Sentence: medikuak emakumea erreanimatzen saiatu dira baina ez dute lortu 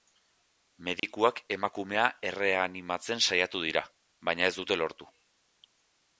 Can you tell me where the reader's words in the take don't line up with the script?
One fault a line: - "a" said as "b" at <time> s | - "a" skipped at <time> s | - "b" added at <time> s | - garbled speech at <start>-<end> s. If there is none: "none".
none